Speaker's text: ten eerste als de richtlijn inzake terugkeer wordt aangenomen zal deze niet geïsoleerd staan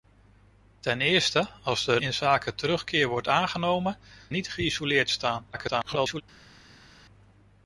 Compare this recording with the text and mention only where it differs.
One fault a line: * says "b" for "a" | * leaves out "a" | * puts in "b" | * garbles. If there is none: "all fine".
* leaves out "richtlijn"
* leaves out "zal deze"
* garbles